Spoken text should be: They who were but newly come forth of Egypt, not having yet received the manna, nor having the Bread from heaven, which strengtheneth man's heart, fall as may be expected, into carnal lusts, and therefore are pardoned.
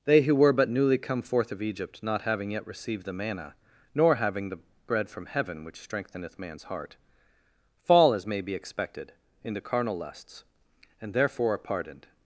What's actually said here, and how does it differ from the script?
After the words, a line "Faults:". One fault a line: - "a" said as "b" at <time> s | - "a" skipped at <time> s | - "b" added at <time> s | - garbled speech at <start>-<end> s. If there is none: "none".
They who were but newly come forth of Egypt, not having yet received the manna, nor having the Bread from heaven, which strengtheneth man's heart, fall as may be expected, into carnal lusts, and therefore are pardoned.
Faults:
none